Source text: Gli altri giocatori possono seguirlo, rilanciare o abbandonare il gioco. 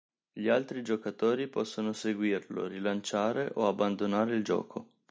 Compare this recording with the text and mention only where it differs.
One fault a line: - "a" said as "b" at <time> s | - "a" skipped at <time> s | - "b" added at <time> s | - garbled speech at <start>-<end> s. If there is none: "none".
none